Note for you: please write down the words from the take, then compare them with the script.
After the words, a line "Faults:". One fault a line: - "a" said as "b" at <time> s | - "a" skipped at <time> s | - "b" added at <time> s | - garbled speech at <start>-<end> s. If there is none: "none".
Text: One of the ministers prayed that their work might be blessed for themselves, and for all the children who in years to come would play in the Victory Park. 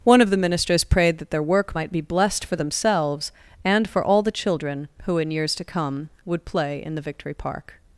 One of the ministers prayed that their work might be blessed for themselves, and for all the children who in years to come would play in the Victory Park.
Faults:
none